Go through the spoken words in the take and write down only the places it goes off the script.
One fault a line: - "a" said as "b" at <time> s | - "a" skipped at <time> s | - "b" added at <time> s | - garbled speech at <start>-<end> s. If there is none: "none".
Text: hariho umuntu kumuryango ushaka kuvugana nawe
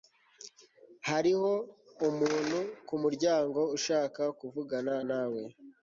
none